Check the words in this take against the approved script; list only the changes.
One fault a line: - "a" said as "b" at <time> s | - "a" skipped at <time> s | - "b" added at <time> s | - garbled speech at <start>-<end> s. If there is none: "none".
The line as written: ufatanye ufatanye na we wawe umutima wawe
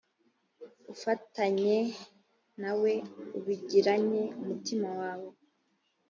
- "ufatanye" skipped at 1.8 s
- "wawe" said as "ubigiranye" at 3.4 s